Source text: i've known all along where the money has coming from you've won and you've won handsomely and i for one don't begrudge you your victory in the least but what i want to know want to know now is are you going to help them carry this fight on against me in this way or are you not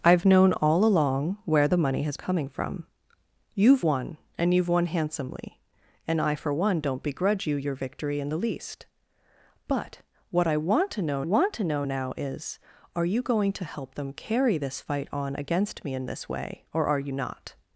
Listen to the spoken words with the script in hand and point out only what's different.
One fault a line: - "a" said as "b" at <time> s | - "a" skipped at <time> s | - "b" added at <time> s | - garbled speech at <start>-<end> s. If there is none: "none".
none